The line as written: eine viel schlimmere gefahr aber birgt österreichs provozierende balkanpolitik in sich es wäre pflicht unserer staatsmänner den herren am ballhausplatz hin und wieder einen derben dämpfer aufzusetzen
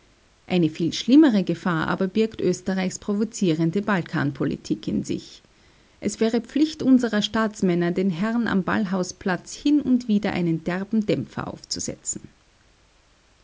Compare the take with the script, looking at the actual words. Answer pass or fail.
pass